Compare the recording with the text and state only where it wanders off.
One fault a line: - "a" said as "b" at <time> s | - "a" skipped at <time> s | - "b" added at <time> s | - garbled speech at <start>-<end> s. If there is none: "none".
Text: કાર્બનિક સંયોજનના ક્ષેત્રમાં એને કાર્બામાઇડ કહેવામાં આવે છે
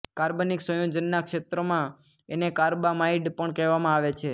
- "પણ" added at 3.3 s